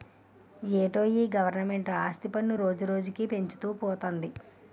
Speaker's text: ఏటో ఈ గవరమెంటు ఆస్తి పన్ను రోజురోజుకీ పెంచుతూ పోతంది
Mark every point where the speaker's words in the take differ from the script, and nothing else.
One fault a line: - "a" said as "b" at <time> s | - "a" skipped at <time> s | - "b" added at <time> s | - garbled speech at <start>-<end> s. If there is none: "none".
none